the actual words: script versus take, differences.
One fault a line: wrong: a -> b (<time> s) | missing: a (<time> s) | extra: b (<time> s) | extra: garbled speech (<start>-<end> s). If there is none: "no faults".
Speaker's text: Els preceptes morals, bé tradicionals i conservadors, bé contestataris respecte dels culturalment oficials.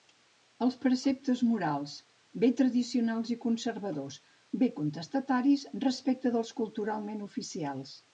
no faults